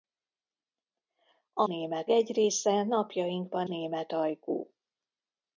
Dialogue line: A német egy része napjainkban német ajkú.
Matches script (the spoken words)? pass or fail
pass